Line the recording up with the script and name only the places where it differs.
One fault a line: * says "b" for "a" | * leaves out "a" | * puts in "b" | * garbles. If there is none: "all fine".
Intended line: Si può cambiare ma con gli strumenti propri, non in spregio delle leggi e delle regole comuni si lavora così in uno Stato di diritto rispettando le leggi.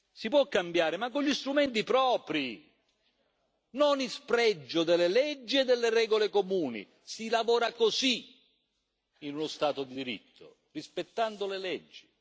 all fine